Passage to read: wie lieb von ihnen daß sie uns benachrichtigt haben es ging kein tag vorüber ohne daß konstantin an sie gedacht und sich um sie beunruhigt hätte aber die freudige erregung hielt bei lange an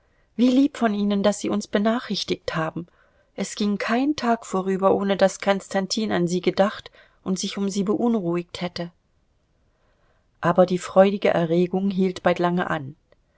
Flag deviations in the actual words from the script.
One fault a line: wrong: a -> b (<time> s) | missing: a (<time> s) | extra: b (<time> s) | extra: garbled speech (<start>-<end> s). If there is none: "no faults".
no faults